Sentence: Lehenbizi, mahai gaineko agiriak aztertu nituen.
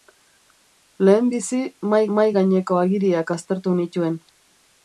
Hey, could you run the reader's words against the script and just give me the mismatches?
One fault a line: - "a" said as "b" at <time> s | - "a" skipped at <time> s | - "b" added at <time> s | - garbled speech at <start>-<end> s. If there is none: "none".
- "mahai" added at 2.2 s